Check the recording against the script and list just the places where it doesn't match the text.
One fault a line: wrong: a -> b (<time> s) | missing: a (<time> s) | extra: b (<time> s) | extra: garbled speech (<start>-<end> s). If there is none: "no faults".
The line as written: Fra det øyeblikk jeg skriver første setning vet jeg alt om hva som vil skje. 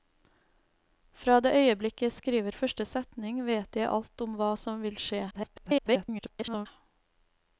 extra: garbled speech (5.3-6.7 s)